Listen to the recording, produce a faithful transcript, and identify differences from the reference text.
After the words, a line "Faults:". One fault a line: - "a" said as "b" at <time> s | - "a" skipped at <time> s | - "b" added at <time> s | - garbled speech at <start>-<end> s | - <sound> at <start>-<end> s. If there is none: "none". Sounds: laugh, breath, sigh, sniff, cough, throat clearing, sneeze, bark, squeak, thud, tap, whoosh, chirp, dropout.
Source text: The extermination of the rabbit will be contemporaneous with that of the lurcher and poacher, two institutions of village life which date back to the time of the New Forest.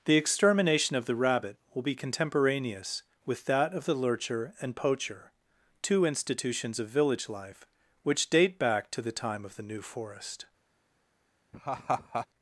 The extermination of the rabbit will be contemporaneous with that of the lurcher and poacher, two institutions of village life which date back to the time of the New Forest.
Faults:
- laugh at 11.5-12.3 s